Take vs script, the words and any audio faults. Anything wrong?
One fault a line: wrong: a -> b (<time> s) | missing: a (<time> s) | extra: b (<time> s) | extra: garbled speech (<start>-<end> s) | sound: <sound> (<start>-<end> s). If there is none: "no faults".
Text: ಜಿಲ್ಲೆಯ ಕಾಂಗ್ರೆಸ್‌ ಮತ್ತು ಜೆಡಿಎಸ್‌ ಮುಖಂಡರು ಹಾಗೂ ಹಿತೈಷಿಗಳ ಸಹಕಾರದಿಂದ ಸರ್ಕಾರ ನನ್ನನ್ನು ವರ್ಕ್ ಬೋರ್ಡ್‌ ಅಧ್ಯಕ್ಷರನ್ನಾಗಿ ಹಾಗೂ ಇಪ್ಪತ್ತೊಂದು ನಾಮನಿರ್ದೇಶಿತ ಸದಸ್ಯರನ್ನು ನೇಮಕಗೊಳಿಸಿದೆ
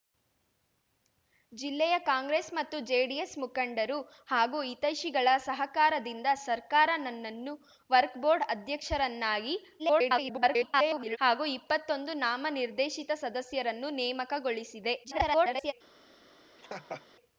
extra: garbled speech (9.8-11.2 s)
extra: garbled speech (15.0-15.7 s)
sound: laugh (16.6-17.1 s)